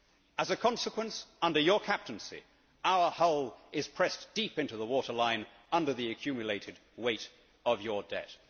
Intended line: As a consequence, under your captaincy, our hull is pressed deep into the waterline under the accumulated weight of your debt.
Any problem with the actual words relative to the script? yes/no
no